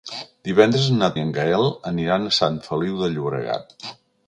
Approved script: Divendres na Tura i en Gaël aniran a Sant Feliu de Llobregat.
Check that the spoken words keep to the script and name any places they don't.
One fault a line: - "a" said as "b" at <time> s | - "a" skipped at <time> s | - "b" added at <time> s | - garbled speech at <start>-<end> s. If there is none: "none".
- "Tura" skipped at 1.1 s